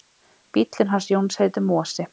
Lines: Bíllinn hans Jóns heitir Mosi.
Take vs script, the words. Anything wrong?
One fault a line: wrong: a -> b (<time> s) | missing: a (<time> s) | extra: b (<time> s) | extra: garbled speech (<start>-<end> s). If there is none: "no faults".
no faults